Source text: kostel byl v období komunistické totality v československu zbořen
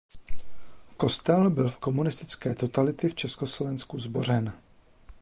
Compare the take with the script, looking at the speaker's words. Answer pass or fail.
fail